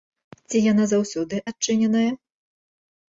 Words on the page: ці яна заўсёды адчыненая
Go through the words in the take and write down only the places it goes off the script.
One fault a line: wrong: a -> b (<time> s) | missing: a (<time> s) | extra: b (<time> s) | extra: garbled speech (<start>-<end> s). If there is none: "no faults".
no faults